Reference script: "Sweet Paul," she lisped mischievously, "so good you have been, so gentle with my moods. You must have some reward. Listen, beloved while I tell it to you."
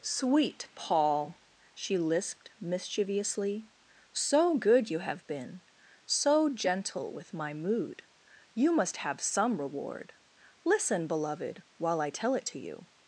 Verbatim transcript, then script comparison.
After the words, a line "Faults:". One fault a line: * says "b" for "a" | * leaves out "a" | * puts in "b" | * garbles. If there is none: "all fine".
"Sweet Paul," she lisped mischievously, "so good you have been, so gentle with my mood. You must have some reward. Listen, beloved while I tell it to you."
Faults:
* says "mood" for "moods"